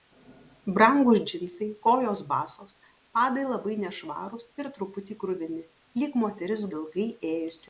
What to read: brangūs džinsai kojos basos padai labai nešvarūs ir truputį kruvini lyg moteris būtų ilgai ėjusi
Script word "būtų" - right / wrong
wrong